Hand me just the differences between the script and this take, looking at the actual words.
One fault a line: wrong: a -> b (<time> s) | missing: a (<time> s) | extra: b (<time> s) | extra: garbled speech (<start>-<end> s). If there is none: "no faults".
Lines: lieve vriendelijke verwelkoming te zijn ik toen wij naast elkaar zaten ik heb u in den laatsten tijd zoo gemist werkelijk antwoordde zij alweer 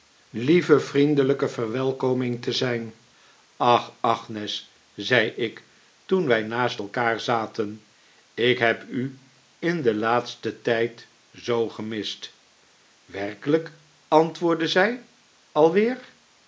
extra: ach agnes zei (3.6 s)